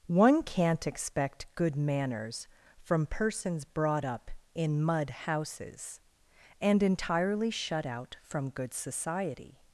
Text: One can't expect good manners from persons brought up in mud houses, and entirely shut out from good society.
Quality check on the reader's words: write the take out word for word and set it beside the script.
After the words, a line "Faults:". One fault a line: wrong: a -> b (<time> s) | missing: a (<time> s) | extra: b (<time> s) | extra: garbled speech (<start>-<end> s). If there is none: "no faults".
One can't expect good manners from persons brought up in mud houses, and entirely shut out from good society.
Faults:
no faults